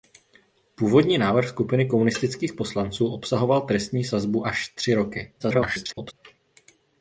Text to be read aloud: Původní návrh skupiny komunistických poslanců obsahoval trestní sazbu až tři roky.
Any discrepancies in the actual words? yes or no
yes